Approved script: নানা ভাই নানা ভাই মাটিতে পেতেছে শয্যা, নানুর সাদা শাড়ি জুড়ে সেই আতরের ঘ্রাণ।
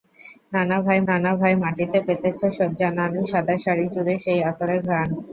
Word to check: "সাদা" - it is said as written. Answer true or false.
true